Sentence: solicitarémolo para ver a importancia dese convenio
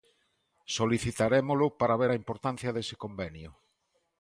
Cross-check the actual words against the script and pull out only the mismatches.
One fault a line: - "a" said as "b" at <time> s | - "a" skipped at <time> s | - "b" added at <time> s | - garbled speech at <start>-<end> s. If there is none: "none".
none